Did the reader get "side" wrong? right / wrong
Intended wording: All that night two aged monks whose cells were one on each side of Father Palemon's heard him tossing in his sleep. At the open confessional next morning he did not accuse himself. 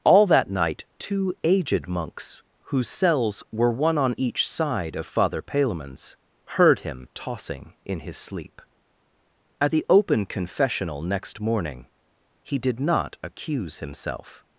right